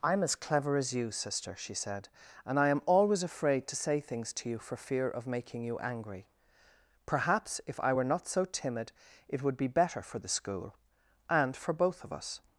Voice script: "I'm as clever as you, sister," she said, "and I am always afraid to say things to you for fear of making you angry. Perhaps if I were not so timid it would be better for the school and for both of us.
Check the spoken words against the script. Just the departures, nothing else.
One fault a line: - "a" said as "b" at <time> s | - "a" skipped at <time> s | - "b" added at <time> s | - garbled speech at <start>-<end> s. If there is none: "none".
none